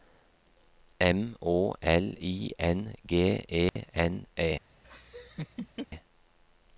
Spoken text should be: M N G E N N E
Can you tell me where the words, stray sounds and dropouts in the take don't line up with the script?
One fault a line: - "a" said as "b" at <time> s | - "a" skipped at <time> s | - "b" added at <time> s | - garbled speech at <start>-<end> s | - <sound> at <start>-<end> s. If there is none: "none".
- "Å L I" added at 1.4 s
- dropout at 3.7-3.8 s
- "N" skipped at 4.3 s
- laugh at 4.8-5.9 s